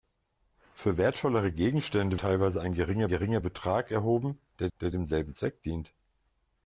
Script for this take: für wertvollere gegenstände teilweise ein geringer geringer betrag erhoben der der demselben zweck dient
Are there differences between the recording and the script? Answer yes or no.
no